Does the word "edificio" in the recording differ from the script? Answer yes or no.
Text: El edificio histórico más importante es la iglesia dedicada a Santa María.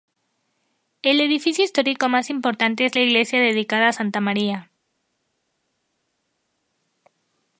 no